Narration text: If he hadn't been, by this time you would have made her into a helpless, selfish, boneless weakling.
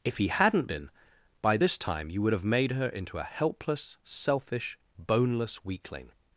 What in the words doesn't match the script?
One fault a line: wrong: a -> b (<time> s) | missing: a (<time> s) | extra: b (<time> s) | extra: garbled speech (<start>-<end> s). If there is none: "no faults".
no faults